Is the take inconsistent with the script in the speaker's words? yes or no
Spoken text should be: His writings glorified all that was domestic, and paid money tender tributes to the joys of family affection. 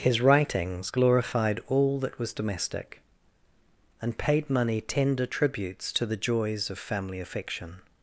no